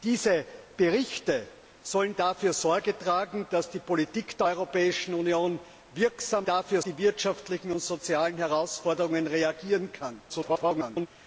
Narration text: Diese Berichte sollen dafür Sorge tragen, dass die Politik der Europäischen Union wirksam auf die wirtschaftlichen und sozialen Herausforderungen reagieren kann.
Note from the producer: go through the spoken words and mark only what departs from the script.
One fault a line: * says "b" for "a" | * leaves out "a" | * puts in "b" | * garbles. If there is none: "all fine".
* says "dafür" for "auf"
* garbles